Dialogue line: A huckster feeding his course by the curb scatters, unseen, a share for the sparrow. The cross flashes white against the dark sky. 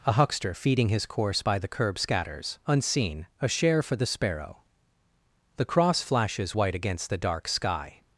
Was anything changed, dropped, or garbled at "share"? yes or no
no